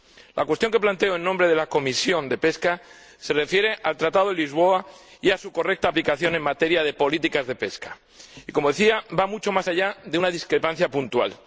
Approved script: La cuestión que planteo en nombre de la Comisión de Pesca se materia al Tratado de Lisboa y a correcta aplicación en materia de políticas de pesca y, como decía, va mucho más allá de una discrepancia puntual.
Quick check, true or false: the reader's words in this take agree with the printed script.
false